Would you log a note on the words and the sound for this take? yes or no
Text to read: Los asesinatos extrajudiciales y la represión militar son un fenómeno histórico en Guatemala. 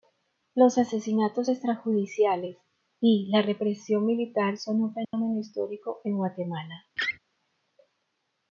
yes